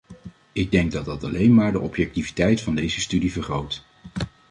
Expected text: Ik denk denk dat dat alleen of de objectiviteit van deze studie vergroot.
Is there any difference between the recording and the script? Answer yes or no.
yes